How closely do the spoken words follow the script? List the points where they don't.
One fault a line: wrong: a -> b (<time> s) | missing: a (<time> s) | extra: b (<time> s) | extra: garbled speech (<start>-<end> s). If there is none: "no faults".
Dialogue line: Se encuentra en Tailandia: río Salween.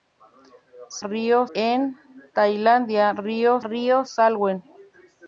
wrong: encuentra -> río (1.0 s)
extra: río (3.6 s)